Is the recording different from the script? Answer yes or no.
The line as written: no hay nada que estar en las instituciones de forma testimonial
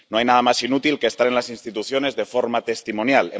yes